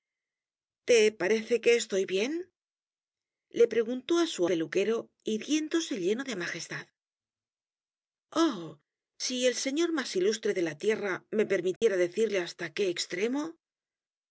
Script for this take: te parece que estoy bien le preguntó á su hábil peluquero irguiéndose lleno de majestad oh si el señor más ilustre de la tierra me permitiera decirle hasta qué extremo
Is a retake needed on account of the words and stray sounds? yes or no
yes